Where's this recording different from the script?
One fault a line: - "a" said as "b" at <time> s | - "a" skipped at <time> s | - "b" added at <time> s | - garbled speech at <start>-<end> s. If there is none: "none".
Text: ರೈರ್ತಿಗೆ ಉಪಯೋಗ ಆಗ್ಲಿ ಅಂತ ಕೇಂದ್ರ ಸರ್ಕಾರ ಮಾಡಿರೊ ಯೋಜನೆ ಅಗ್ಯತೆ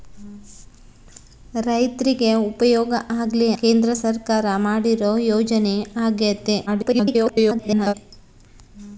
- "ಅಂತ" skipped at 3.5 s
- garbled speech at 6.7-7.9 s